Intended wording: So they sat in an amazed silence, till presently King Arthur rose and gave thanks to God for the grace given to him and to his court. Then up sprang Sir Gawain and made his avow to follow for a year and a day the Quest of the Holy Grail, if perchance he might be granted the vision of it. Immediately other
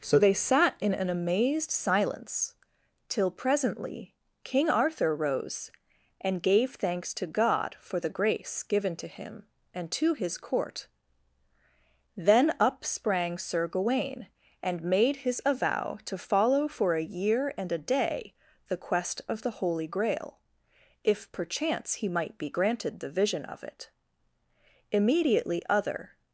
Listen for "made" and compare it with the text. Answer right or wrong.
right